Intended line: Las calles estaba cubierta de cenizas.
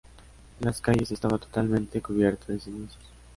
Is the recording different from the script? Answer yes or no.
yes